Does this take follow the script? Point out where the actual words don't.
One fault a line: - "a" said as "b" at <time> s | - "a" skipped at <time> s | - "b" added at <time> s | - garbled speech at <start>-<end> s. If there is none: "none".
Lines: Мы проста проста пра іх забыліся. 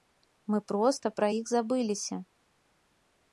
- "проста" skipped at 1.1 s